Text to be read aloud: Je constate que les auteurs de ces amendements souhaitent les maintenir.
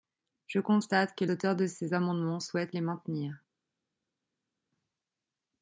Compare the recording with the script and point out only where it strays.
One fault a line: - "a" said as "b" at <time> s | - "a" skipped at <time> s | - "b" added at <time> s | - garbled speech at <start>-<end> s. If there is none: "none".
- "les" skipped at 1.2 s